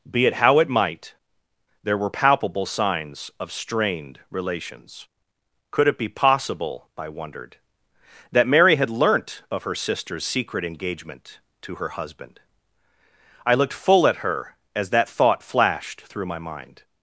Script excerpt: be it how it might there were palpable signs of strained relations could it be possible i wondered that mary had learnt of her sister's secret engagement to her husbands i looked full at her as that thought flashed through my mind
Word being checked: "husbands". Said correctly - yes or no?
no